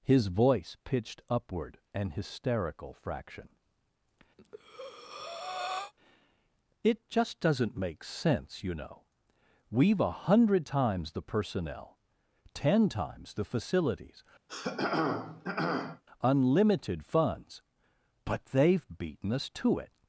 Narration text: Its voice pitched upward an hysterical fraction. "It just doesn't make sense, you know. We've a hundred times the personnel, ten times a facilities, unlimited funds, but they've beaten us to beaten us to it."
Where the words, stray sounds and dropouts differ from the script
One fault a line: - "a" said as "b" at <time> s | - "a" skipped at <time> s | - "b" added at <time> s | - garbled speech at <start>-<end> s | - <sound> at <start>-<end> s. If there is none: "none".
- "Its" said as "His" at 0.0 s
- breath at 4.4-5.9 s
- "a" said as "the" at 13.3 s
- throat clearing at 14.5-16.0 s
- "beaten us to" skipped at 19.8 s